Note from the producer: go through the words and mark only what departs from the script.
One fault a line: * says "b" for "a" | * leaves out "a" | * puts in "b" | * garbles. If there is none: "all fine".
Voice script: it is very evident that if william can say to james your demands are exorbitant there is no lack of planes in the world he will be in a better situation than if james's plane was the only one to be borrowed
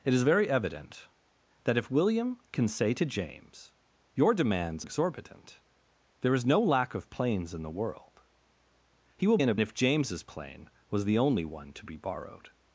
* leaves out "are"
* leaves out "be"
* leaves out "better situation than"